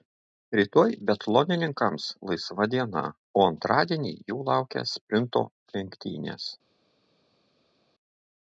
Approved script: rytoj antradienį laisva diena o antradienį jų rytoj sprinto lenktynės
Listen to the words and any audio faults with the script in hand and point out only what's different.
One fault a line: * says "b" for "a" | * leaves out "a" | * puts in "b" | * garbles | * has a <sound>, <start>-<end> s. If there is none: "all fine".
* says "biatlonininkams" for "antradienį"
* says "laukia" for "rytoj"